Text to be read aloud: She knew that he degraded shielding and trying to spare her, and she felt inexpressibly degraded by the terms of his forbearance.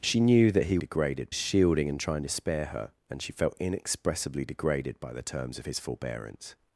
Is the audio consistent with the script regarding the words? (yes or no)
yes